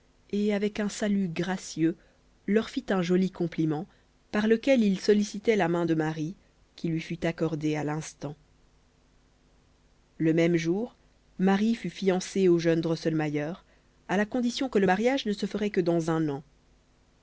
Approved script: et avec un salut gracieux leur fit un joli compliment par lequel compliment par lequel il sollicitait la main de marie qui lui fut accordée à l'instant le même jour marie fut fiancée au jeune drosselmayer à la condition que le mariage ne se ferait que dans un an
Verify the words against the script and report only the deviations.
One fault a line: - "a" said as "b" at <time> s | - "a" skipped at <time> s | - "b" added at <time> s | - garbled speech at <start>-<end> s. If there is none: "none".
- "compliment par lequel" skipped at 4.8 s